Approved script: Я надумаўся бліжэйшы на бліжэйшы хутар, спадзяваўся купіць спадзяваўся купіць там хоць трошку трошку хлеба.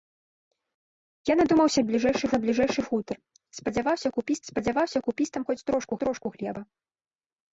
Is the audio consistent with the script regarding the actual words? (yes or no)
yes